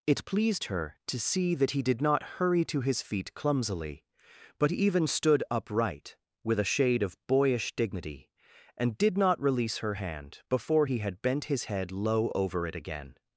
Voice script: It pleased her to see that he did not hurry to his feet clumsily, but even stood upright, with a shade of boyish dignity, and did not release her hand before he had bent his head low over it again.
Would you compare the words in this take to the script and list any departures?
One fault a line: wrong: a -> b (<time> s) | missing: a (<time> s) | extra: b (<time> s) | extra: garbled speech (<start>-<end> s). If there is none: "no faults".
no faults